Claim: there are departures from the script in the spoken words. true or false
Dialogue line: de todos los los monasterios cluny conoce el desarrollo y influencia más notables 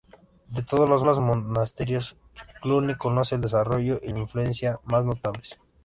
false